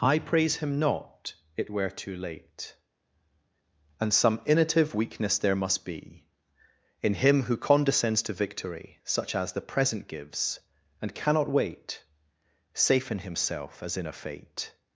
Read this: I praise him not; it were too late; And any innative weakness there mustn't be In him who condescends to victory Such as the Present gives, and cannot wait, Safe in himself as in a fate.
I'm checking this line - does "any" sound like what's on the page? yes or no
no